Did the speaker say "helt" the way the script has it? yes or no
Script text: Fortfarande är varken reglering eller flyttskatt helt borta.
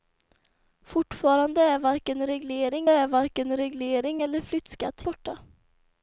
no